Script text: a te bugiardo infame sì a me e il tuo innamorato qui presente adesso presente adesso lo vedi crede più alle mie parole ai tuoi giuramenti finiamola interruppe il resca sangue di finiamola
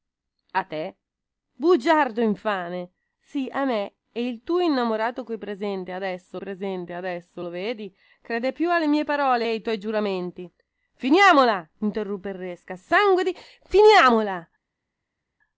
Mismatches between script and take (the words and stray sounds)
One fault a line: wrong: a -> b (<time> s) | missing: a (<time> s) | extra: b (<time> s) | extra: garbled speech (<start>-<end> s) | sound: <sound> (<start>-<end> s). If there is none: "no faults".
no faults